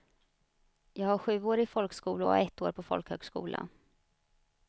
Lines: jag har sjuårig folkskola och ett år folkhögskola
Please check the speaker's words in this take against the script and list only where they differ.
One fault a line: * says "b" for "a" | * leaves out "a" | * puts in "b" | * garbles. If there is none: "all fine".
* puts in "på"